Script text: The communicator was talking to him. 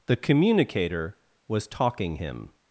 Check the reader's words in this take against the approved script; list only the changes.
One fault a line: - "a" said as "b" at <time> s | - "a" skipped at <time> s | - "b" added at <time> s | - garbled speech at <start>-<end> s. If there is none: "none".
- "to" skipped at 2.2 s